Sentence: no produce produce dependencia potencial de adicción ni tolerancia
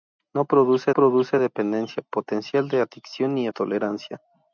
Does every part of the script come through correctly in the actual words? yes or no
yes